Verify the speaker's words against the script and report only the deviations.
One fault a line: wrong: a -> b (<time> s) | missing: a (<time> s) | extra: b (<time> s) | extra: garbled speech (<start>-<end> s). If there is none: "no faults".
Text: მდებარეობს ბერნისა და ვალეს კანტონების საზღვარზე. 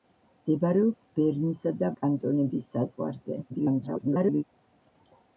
missing: ვალეს (1.9 s)
extra: garbled speech (3.5-4.4 s)